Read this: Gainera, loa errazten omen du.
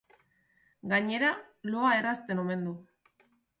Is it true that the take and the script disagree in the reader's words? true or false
false